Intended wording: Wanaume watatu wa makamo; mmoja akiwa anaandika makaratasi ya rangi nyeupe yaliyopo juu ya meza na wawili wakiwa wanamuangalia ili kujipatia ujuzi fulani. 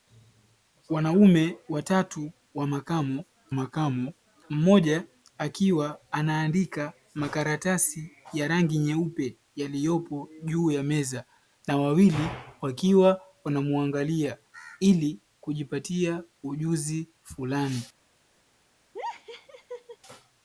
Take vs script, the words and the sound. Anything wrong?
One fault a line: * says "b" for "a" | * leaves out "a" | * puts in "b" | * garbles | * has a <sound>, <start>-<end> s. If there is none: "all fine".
* puts in "makamo"
* has a laugh, 18.9-20.0 s